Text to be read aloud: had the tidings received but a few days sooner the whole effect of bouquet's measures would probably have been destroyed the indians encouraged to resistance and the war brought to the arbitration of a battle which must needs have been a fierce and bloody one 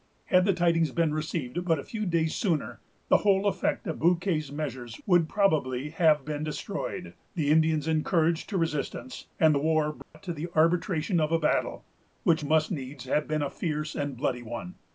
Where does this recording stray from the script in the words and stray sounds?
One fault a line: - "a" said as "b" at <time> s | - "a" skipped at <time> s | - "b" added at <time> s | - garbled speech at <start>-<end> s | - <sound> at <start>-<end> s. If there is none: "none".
- "been" added at 0.9 s
- dropout at 10.0-10.1 s